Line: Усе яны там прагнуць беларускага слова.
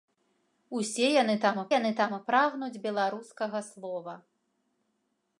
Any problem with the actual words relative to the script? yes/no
yes